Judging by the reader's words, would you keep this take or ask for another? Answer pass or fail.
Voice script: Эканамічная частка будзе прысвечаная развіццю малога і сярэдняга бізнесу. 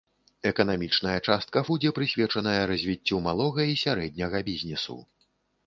pass